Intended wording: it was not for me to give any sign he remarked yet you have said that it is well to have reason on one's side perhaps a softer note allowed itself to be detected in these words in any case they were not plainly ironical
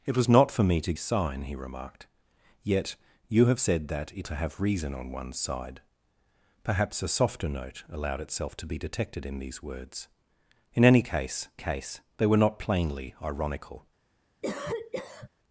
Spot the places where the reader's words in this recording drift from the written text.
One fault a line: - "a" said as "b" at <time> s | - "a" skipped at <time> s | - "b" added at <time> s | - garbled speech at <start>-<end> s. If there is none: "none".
- "give any" skipped at 0.9 s
- "is well" skipped at 4.3 s
- "case" added at 11.6 s